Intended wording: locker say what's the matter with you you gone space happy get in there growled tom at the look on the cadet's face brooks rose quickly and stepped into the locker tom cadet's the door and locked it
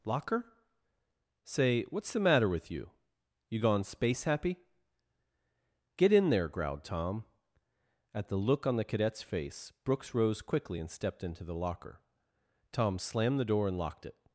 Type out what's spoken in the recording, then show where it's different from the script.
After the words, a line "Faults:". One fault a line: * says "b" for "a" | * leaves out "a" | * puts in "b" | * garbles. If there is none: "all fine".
locker say what's the matter with you you gone space happy get in there growled tom at the look on the cadet's face brooks rose quickly and stepped into the locker tom slammed the door and locked it
Faults:
* says "slammed" for "cadet's"